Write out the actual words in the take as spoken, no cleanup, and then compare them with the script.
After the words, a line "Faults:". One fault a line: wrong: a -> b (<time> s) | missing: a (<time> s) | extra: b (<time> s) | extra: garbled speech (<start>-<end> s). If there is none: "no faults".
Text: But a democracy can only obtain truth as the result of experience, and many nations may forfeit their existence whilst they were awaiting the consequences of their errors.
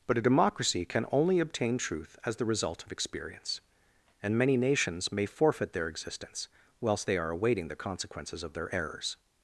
But a democracy can only obtain truth as the result of experience, and many nations may forfeit their existence whilst they are awaiting the consequences of their errors.
Faults:
wrong: were -> are (7.2 s)